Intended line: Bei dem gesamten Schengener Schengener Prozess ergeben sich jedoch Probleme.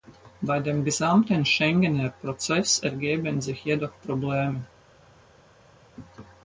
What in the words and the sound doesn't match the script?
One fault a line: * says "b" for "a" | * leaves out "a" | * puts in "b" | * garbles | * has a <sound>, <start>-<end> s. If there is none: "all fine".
* leaves out "Schengener"